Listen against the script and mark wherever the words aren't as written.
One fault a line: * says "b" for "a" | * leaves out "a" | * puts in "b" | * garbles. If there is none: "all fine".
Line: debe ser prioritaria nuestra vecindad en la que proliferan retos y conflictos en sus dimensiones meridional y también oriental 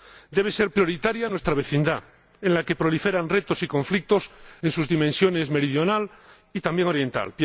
all fine